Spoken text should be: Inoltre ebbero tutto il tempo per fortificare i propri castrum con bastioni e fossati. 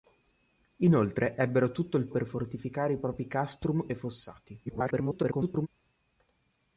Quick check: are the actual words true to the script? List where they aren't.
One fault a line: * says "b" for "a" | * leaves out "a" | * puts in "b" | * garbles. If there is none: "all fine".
* leaves out "tempo"
* leaves out "con bastioni"
* garbles